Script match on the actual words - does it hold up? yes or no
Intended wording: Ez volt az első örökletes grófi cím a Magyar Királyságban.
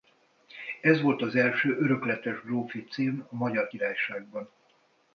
yes